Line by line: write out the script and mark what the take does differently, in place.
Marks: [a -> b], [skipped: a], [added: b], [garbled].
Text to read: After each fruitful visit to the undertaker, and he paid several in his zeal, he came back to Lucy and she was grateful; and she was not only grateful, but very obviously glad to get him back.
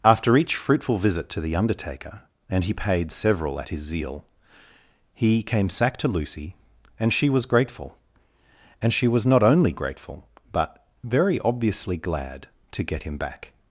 After each fruitful visit to the undertaker, and he paid several [in -> at] his zeal, he came [back -> sack] to Lucy and she was grateful; and she was not only grateful, but very obviously glad to get him back.